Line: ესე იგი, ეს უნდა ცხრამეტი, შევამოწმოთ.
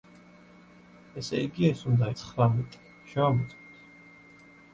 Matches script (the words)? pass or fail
pass